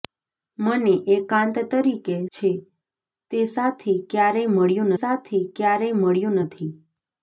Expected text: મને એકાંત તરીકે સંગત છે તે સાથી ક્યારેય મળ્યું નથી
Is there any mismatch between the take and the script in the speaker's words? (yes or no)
yes